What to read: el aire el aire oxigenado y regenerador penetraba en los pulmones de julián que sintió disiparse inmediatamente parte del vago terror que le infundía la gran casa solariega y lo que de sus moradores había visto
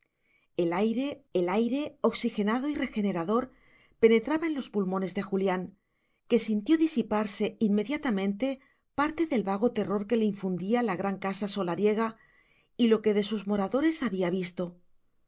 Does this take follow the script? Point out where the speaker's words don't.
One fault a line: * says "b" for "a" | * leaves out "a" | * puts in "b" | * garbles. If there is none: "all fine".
all fine